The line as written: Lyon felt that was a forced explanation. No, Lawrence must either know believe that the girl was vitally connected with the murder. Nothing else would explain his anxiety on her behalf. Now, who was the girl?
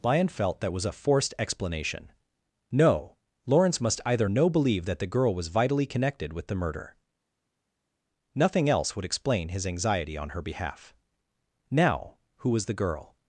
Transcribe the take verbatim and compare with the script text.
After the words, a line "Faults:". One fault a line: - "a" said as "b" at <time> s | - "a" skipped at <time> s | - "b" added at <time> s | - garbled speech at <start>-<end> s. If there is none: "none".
Lyon felt that was a forced explanation. No, Lawrence must either know believe that the girl was vitally connected with the murder. Nothing else would explain his anxiety on her behalf. Now, who was the girl?
Faults:
none